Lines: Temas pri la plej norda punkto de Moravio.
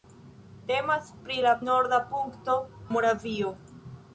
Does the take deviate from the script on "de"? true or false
true